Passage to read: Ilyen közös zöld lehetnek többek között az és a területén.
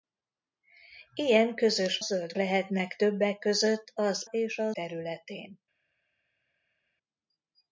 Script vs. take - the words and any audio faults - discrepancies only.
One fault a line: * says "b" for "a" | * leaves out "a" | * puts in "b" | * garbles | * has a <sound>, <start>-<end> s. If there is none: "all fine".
all fine